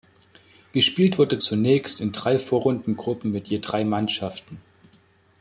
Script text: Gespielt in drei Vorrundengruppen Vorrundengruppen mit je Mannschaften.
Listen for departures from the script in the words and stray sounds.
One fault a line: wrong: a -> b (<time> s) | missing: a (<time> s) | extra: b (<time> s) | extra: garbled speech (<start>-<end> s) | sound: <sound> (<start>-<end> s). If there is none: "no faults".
extra: wurde zunächst (1.2 s)
missing: Vorrundengruppen (3.3 s)
extra: drei (3.6 s)